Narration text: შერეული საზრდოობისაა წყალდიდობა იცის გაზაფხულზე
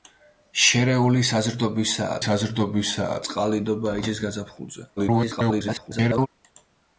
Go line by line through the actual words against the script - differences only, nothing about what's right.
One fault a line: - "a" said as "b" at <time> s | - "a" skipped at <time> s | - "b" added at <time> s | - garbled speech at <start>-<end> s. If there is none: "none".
- "საზრდოობისაა" added at 2.3 s
- garbled speech at 5.0-6.3 s